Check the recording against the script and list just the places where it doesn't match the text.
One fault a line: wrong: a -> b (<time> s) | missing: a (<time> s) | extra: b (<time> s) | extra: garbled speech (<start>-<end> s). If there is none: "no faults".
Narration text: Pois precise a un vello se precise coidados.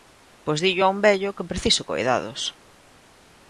wrong: precise -> dillo (0.7 s)
wrong: se -> que (1.4 s)